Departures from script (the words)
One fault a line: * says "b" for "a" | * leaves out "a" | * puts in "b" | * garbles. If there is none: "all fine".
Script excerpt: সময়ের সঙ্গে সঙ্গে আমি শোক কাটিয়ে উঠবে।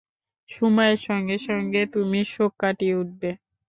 * says "তুমি" for "আমি"